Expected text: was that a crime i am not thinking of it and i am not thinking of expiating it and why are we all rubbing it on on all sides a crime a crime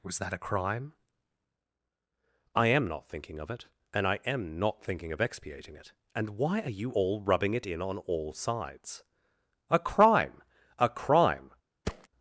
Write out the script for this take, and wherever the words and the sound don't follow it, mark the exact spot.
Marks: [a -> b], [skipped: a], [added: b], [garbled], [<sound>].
was that a crime i am not thinking of it and i am not thinking of expiating it and why are [we -> you] all rubbing it [on -> in] on all sides a crime a crime [thud]